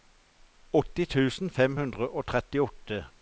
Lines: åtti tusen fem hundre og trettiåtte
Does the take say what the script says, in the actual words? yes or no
yes